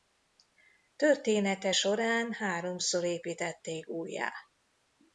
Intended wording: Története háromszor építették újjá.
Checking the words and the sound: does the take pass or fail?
fail